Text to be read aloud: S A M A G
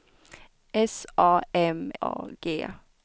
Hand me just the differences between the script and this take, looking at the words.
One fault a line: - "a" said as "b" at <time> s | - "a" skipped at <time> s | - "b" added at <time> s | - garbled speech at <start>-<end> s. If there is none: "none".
none